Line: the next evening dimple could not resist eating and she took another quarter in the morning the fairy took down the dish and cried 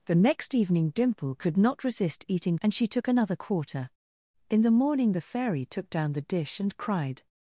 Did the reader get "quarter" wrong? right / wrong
right